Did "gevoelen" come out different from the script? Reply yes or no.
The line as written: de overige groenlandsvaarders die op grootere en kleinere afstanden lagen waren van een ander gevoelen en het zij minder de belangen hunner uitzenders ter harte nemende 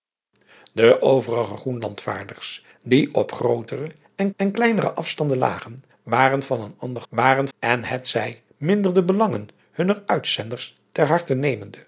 yes